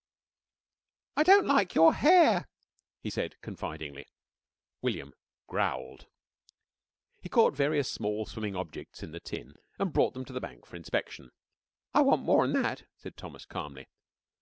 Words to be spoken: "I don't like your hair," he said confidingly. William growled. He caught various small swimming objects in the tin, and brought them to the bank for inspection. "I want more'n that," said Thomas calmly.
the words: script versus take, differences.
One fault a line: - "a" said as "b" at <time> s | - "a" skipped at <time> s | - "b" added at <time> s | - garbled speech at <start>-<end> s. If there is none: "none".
none